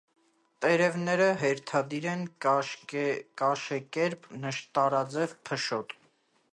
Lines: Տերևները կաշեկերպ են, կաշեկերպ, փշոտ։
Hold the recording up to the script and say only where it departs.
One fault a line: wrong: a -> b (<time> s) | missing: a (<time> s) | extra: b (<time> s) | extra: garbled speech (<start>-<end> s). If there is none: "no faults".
wrong: կաշեկերպ -> հերթադիր (1.4 s)
extra: նշտարաձև (4.5 s)